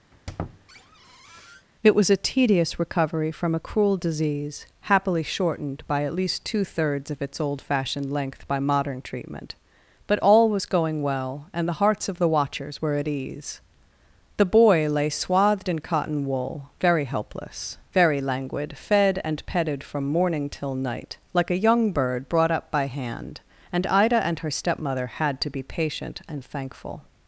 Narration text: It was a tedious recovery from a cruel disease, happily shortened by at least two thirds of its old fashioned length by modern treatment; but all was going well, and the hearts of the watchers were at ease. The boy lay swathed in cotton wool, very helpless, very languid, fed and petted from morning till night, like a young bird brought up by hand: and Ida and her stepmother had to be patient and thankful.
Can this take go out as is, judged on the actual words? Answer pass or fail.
pass